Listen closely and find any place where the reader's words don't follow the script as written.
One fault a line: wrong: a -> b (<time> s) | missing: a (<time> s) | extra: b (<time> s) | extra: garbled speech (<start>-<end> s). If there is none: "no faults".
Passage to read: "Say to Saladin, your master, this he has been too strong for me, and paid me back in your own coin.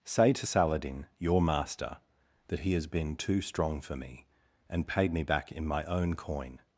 wrong: this -> that (2.5 s)
wrong: your -> my (5.7 s)